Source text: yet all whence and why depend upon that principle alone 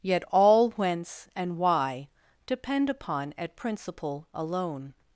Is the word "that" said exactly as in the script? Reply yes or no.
no